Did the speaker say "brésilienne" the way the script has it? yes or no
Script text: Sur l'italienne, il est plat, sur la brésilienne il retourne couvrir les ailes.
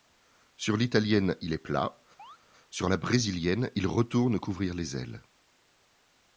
yes